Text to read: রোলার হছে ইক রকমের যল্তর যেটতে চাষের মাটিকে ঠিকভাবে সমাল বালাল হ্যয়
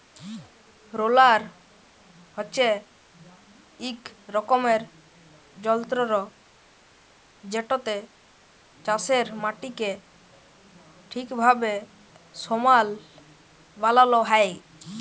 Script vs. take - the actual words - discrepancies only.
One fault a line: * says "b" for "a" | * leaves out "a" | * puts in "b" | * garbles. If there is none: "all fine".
all fine